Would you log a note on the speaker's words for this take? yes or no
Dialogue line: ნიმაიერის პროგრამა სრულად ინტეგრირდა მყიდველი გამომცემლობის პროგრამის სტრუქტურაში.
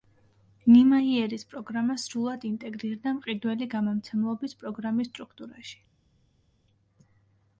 no